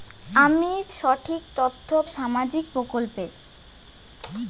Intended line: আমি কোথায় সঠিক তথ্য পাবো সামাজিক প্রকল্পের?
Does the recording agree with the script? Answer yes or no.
no